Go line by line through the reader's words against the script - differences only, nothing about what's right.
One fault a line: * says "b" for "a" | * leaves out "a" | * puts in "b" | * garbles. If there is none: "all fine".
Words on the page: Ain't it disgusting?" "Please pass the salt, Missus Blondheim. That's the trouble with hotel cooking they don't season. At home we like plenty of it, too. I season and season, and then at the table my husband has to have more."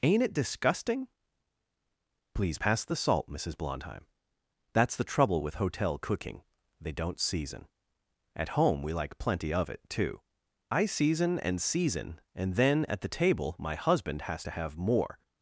all fine